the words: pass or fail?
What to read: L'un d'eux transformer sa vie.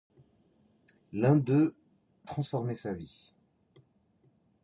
pass